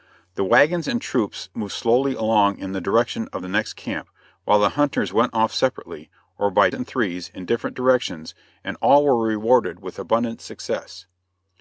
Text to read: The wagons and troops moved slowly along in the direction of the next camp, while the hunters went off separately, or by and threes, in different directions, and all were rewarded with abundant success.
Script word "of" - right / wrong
right